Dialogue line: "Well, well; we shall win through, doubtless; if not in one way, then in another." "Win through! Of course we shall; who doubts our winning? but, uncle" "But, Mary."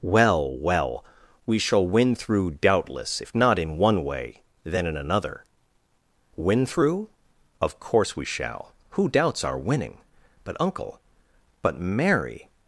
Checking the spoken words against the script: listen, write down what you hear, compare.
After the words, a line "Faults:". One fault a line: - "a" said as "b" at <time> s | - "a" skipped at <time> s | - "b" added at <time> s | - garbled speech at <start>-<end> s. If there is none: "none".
"Well, well; we shall win through, doubtless; if not in one way, then in another." "Win through! Of course we shall; who doubts our winning? but, uncle" "But, Mary."
Faults:
none